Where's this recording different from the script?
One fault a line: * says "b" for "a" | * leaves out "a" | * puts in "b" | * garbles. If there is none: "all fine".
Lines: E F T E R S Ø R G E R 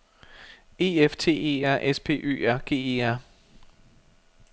* puts in "P"